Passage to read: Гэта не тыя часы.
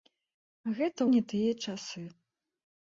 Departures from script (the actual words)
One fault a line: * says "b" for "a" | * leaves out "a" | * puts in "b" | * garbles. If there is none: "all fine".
all fine